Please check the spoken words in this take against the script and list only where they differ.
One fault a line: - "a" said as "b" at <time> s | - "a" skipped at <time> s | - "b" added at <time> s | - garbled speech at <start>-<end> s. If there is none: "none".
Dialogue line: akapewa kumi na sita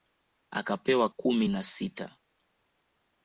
none